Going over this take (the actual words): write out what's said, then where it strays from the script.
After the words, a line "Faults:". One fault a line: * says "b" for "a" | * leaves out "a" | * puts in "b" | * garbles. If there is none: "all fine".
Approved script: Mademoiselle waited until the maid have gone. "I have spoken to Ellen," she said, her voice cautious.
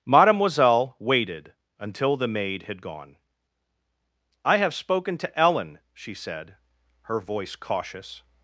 Mademoiselle waited until the maid had gone. "I have spoken to Ellen," she said, her voice cautious.
Faults:
* says "had" for "have"